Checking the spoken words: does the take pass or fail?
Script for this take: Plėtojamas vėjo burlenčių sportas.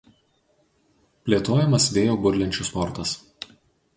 pass